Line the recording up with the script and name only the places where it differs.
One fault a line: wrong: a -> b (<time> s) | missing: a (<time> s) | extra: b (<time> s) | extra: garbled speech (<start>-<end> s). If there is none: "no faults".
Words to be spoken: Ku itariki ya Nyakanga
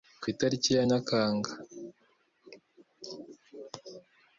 no faults